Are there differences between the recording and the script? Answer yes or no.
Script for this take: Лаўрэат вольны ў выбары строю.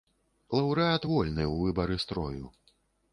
no